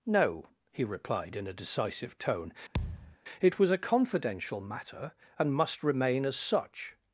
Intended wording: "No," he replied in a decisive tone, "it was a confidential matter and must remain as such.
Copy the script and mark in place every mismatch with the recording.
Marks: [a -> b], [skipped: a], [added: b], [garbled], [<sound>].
"No," he replied in a decisive tone, [thud] "it was a confidential matter and must remain as such.